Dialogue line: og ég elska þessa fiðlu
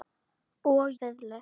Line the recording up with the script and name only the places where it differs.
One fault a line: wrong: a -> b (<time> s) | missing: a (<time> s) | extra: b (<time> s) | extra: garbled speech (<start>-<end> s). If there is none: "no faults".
missing: ég elska þessa (0.9 s)